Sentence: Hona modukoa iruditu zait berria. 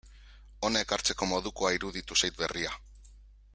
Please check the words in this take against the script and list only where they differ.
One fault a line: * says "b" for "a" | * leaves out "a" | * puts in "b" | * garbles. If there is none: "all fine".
* puts in "ekartzeko"